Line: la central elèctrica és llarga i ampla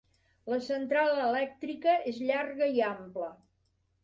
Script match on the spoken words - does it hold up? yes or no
yes